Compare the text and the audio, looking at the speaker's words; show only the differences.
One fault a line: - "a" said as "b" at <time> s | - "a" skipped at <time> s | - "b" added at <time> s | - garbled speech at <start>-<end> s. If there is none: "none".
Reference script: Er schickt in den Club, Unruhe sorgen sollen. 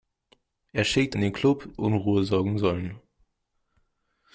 none